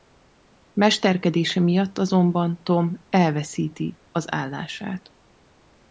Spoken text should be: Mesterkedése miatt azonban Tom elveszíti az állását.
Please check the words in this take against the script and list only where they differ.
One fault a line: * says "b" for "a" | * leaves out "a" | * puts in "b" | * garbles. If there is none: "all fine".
all fine